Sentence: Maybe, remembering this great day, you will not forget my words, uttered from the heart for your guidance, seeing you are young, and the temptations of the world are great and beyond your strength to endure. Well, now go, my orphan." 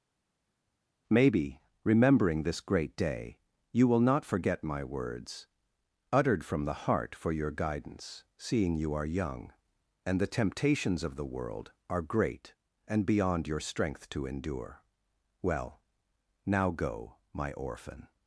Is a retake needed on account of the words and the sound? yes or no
no